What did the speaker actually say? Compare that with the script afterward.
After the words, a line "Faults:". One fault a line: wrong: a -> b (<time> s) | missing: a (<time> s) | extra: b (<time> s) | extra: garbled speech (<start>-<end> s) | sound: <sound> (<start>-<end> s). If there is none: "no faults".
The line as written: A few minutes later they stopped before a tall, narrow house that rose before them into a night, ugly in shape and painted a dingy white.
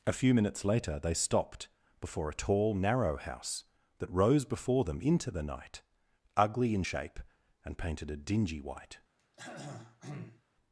A few minutes later they stopped before a tall, narrow house that rose before them into the night, ugly in shape and painted a dingy white.
Faults:
wrong: a -> the (5.3 s)
sound: throat clearing (9.2-10.4 s)